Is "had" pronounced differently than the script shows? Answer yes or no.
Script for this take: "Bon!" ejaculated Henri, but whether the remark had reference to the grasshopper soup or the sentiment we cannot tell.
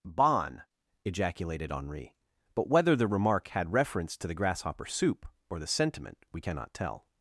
no